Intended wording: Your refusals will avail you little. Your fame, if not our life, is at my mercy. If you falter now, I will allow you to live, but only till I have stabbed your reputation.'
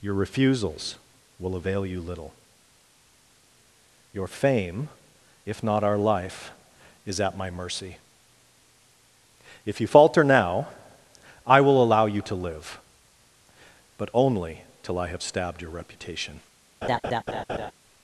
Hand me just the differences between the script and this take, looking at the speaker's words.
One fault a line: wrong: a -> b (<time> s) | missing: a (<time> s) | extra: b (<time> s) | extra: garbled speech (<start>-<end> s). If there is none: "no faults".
no faults